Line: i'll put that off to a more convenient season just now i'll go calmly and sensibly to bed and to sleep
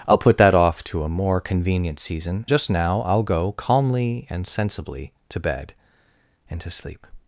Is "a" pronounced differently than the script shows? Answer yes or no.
no